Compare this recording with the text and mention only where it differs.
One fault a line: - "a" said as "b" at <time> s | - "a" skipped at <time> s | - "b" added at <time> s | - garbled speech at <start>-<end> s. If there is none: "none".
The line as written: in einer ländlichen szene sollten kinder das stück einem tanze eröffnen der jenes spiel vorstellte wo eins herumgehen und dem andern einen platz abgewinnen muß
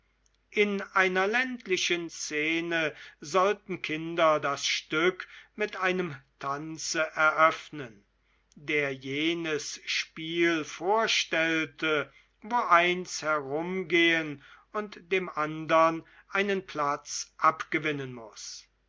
- "mit" added at 5.6 s